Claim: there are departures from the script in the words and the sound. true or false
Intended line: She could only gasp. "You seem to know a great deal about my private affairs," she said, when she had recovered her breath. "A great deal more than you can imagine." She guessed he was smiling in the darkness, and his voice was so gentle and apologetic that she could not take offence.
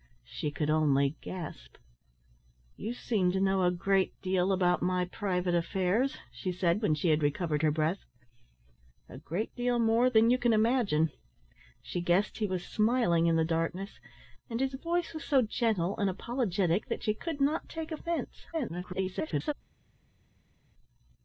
true